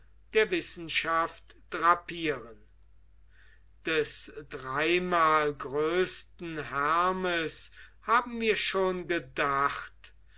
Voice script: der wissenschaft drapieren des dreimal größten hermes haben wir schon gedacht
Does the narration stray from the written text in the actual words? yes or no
no